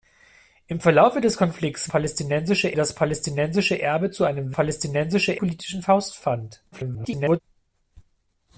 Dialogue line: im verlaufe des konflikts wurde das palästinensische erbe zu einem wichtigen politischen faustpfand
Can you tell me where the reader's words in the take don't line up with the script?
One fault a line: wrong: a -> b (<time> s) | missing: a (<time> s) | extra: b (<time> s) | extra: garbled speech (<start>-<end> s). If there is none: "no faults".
wrong: wurde -> palästinensische (1.9 s)
wrong: wichtigen -> palästinensische (4.5 s)
extra: garbled speech (6.7-7.4 s)